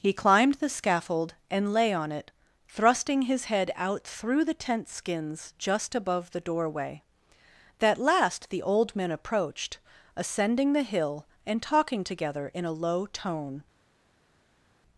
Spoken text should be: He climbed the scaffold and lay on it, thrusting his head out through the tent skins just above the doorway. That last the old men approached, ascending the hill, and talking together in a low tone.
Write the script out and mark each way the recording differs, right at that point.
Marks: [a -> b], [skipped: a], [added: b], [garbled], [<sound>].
He climbed the scaffold and lay on it, thrusting his head out through the tent skins just above the doorway. That last the old men approached, ascending the hill, and talking together in a low tone.